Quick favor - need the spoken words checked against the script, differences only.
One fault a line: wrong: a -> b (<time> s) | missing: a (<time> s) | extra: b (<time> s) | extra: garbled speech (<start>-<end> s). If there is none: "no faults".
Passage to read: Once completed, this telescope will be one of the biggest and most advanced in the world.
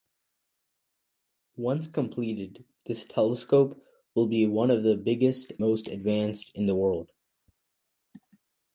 missing: and (5.5 s)